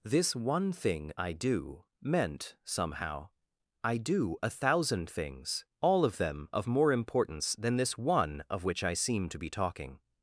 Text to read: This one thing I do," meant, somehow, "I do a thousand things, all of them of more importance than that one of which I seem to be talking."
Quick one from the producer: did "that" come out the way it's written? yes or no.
no